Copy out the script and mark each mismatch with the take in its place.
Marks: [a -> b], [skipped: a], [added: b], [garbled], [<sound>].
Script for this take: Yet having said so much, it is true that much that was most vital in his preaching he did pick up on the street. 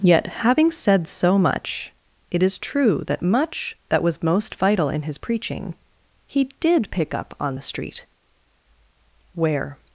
Yet having said so much, it is true that much that was most vital in his preaching he did pick up on the street. [added: Where]